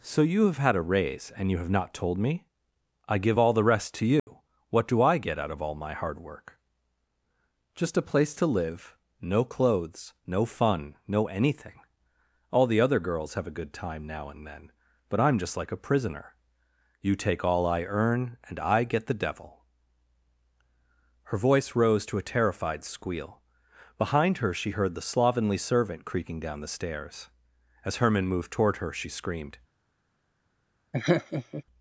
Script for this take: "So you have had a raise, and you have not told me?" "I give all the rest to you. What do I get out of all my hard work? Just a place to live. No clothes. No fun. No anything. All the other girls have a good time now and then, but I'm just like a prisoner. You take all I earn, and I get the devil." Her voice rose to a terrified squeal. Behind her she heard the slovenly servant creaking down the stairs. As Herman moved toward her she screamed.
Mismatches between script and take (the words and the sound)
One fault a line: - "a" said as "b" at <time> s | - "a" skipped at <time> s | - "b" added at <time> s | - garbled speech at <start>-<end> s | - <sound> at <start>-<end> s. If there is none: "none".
- dropout at 4.2-4.3 s
- laugh at 30.9-31.6 s